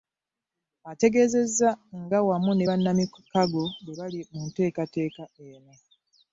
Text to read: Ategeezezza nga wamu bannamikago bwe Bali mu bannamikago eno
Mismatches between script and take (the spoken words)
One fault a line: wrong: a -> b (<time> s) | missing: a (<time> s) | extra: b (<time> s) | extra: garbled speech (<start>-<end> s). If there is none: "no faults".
extra: ne (2.5 s)
wrong: bannamikago -> nteekateeka (4.5 s)